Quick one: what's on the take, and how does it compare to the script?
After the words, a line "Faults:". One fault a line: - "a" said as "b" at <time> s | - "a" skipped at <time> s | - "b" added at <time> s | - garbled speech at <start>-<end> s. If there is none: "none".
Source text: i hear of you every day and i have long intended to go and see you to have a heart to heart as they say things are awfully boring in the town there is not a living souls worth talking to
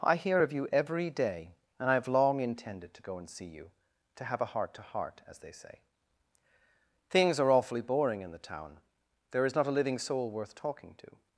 i hear of you every day and i have long intended to go and see you to have a heart to heart as they say things are awfully boring in the town there is not a living soul worth talking to
Faults:
- "souls" said as "soul" at 10.0 s